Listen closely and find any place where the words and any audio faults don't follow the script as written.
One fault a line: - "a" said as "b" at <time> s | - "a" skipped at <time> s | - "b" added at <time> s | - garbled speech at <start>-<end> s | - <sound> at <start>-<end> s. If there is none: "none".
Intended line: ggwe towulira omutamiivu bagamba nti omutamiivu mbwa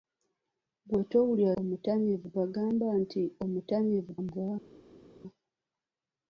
none